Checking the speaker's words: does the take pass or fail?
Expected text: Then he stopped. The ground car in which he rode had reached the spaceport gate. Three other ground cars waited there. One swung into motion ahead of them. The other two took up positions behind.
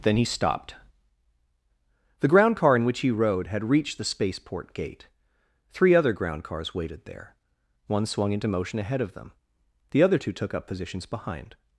pass